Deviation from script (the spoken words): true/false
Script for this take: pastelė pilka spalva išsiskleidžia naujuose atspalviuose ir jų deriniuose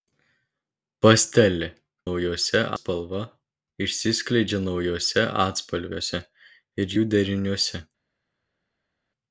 true